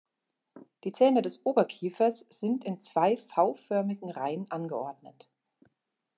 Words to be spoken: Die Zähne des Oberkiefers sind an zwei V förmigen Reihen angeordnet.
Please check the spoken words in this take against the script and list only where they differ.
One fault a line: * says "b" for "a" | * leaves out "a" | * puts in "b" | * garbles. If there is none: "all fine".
* says "in" for "an"